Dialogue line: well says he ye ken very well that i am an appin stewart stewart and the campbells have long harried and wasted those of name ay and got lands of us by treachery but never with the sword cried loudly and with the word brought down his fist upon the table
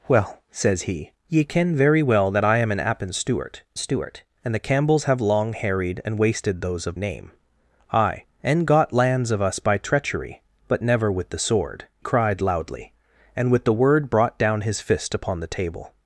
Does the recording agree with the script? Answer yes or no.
yes